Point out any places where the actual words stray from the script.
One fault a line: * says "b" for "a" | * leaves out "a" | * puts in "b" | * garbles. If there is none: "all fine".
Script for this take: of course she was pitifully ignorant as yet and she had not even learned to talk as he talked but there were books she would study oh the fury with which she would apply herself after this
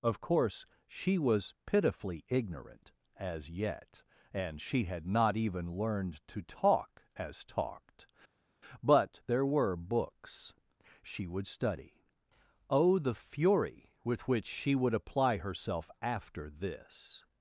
* leaves out "he"